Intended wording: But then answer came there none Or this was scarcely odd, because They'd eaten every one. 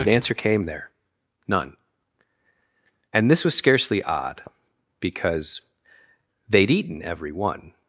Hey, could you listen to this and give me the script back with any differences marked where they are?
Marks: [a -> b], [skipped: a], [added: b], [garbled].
But [skipped: then] answer came there none [Or -> And] this was scarcely odd, because They'd eaten every one.